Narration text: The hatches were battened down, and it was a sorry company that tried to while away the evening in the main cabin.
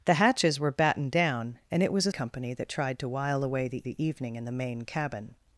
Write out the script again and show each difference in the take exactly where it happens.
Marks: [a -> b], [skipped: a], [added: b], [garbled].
The hatches were battened down, and it was a [skipped: sorry] company that tried to while away the [added: the] evening in the main cabin.